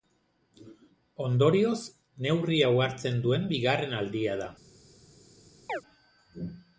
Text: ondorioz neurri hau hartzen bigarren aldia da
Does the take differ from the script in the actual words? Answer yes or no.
yes